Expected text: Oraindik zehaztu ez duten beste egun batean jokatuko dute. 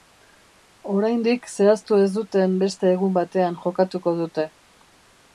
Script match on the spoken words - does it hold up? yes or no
yes